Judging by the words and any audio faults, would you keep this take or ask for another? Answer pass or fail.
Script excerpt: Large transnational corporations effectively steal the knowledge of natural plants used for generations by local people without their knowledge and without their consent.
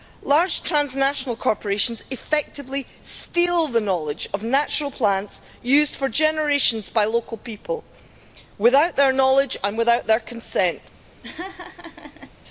fail